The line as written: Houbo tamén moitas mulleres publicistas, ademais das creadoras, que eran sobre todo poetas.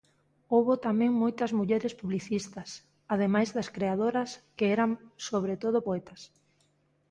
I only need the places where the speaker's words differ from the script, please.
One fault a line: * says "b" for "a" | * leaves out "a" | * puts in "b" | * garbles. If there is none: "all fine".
all fine